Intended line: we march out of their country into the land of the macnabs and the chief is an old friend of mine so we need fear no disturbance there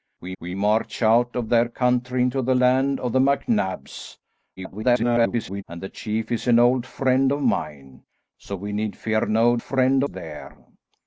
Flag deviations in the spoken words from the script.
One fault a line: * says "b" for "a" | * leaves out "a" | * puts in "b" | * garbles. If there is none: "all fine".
* puts in "we"
* garbles
* says "friend" for "disturbance"